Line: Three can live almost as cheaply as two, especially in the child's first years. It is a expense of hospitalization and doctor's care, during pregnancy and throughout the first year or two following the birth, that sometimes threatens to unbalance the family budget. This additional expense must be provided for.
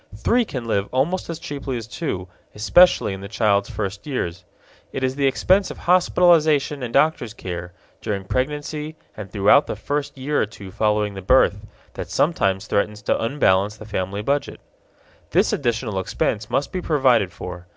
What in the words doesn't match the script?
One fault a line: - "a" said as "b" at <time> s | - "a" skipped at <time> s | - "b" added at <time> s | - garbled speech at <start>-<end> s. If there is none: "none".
- "a" said as "the" at 5.2 s